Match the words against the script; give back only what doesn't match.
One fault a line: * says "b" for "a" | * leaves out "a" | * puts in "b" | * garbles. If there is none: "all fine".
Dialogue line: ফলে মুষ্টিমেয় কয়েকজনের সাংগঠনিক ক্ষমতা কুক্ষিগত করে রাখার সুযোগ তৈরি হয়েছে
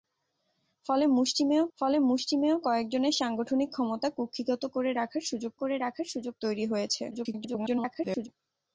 * puts in "ফলে মুষ্টিমেয়"
* puts in "করে রাখার সুযোগ"
* garbles